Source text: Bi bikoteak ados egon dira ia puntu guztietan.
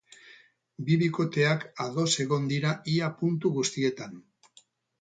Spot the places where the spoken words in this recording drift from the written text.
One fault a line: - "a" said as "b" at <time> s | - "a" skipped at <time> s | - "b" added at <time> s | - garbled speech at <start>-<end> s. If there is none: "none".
none